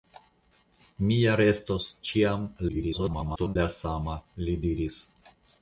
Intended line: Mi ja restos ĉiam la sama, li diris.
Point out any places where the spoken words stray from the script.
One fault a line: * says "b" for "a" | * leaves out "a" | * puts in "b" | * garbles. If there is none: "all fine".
* garbles